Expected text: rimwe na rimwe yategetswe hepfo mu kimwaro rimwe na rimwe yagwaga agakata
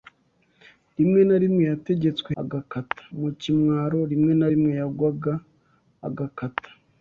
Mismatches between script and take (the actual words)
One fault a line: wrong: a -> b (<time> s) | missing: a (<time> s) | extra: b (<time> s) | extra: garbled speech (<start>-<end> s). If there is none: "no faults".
wrong: hepfo -> agakata (2.4 s)